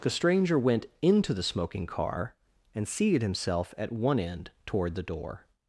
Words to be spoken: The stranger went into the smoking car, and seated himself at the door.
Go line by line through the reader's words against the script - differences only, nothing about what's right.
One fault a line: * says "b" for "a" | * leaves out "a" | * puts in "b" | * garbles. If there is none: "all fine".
* puts in "one end toward"